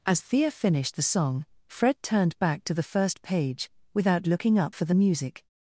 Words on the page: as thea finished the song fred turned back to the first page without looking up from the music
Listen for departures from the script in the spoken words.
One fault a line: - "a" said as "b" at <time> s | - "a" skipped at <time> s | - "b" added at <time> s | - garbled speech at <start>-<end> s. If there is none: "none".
- "from" said as "for" at 4.7 s